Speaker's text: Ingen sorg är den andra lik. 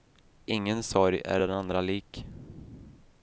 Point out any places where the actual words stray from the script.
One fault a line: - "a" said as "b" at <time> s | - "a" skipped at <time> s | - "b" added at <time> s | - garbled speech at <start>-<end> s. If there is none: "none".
none